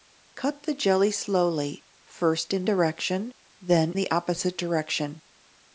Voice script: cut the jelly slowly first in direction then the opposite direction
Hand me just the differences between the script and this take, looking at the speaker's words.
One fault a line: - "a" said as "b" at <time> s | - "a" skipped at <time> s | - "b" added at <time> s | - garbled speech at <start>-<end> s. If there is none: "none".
none